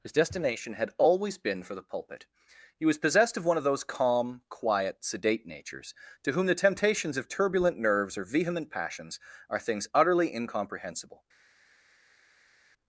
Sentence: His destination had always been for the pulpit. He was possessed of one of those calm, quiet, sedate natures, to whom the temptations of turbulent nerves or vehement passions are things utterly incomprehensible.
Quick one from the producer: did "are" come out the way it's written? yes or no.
yes